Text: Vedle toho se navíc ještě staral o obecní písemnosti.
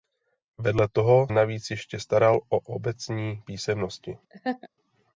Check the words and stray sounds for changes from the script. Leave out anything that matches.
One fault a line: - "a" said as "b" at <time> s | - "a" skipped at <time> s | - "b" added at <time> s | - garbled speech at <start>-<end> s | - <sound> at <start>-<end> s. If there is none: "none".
- "se" skipped at 1.3 s
- laugh at 4.3-4.7 s